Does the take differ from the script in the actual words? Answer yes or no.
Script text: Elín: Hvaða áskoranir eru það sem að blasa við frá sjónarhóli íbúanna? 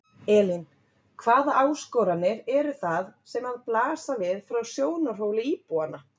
no